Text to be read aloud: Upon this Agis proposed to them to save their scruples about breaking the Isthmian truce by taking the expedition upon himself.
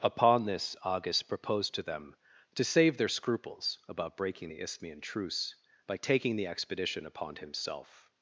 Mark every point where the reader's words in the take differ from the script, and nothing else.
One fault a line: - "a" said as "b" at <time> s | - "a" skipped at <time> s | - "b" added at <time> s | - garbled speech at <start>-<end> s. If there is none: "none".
none